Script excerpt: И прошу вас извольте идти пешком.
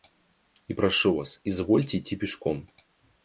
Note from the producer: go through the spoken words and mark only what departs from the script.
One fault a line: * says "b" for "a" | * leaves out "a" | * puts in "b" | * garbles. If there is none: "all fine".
all fine